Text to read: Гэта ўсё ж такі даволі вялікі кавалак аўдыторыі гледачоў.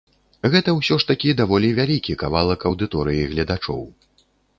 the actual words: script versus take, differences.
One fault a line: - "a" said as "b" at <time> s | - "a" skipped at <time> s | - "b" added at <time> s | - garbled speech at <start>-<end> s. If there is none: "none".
none